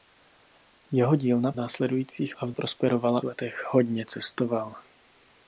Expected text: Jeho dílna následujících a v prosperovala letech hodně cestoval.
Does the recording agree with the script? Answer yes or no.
yes